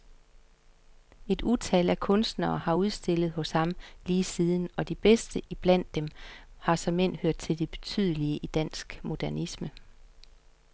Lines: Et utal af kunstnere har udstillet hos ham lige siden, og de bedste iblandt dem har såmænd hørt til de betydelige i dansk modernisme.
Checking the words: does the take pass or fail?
pass